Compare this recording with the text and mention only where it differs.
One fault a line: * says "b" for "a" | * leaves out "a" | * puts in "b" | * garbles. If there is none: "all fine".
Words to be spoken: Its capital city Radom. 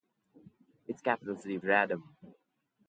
all fine